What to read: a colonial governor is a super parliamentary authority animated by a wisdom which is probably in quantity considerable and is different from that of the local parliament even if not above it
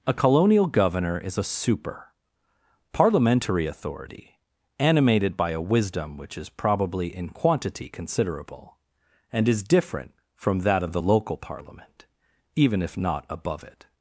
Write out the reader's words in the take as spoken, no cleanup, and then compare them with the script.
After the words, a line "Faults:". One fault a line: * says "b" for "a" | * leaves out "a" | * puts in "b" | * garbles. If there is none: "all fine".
a colonial governor is a super parliamentary authority animated by a wisdom which is probably in quantity considerable and is different from that of the local parliament even if not above it
Faults:
all fine